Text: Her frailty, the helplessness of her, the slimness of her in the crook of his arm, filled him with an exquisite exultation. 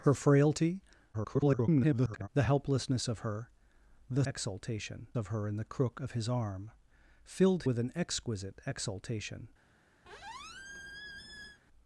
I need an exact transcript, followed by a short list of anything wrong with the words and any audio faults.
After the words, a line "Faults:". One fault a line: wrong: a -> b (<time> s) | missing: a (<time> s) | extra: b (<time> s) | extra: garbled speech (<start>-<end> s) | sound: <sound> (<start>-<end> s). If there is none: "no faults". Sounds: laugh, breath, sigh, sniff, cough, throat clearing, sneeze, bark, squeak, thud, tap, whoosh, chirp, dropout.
Her frailty, [garbled] the helplessness of her, the exultation of her in the crook of his arm, filled with an exquisite exultation.
Faults:
extra: garbled speech (1.1-2.3 s)
wrong: slimness -> exultation (4.2 s)
missing: him (7.6 s)
sound: squeak (10.0-11.6 s)